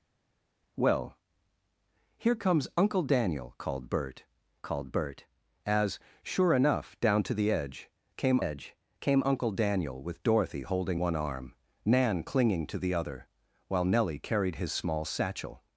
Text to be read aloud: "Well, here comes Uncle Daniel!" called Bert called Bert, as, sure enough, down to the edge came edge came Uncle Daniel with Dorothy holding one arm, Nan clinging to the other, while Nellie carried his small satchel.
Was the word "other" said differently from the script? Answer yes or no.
no